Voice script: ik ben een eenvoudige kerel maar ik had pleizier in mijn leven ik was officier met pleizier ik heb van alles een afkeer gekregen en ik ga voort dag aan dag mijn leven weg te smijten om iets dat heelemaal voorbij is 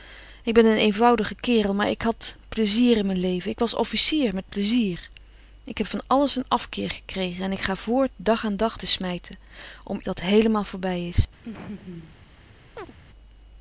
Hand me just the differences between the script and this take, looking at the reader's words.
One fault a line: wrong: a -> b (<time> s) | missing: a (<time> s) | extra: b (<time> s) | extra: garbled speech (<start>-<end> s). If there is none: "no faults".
missing: mijn leven weg (8.8 s)
missing: iets (10.0 s)